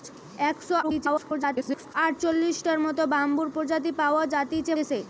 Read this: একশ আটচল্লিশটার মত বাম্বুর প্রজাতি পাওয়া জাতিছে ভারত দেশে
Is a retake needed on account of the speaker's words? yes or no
yes